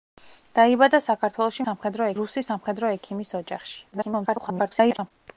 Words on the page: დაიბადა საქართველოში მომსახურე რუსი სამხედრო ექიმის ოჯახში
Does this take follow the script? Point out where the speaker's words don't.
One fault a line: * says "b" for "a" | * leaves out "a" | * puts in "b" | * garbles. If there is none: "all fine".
* says "სამხედრო" for "მომსახურე"
* garbles